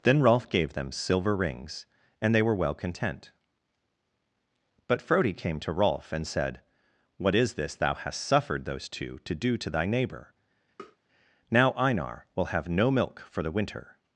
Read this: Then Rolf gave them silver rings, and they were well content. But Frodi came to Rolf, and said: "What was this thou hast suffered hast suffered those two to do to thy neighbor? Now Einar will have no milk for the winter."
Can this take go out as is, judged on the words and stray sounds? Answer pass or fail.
fail